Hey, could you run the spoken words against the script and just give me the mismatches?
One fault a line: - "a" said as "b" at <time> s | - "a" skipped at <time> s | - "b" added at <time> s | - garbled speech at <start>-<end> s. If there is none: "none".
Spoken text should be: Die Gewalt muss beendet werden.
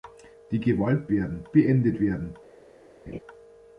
- "muss" said as "werden" at 1.1 s